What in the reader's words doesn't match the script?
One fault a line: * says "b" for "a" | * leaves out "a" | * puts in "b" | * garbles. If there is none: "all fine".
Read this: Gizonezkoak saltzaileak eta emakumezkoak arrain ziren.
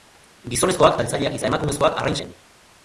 all fine